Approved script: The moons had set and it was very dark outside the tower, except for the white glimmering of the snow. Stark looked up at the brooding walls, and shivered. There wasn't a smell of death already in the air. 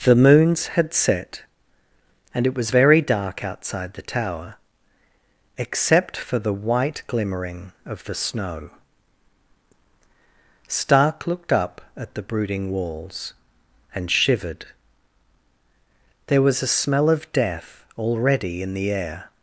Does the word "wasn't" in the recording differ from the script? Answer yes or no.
yes